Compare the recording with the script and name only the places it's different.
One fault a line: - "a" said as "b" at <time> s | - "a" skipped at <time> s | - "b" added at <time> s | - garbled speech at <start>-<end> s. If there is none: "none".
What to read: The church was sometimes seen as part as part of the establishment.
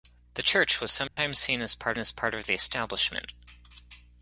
none